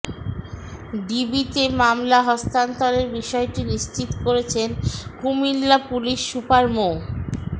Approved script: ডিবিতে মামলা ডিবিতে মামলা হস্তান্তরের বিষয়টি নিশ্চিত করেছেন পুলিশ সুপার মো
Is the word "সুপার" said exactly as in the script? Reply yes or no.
yes